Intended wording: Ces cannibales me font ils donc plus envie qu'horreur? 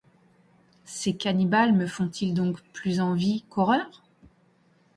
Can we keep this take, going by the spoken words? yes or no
yes